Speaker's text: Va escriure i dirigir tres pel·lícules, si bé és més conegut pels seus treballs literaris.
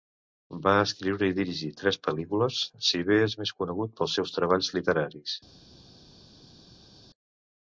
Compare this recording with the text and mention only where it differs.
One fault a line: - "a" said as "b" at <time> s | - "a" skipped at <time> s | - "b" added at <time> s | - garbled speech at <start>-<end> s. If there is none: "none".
none